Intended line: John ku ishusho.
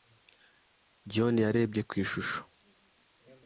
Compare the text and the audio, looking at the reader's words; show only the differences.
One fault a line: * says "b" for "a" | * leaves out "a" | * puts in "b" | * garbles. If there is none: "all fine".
* puts in "yarebye"